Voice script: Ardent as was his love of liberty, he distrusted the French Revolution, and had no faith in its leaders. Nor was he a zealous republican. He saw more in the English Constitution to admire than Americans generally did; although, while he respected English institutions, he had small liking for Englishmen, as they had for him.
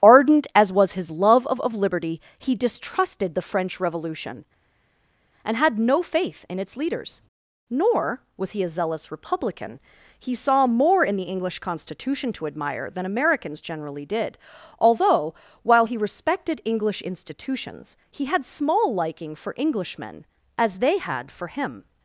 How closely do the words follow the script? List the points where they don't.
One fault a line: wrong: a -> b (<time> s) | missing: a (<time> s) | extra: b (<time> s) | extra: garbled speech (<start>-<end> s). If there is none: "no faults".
extra: of (1.6 s)